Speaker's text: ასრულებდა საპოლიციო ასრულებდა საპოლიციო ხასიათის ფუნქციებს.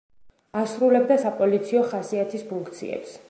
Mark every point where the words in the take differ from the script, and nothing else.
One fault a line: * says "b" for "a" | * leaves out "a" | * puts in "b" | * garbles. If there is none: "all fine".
* leaves out "ასრულებდა საპოლიციო"